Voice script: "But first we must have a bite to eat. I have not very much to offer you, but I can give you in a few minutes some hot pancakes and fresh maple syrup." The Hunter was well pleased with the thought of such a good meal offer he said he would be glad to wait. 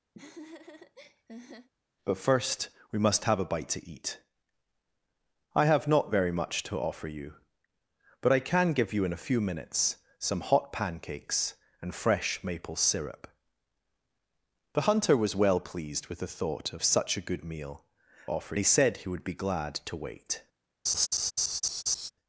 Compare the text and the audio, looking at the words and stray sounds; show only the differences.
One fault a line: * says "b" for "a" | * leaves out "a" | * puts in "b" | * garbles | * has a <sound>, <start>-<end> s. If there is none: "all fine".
* has a laugh, 0.1-1.7 s
* has a laugh, 20.9-22.1 s